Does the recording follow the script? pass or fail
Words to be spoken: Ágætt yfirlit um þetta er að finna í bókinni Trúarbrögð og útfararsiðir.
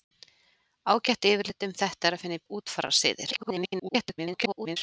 fail